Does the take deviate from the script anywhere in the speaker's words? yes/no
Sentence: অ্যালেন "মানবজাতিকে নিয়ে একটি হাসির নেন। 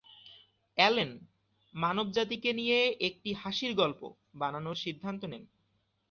yes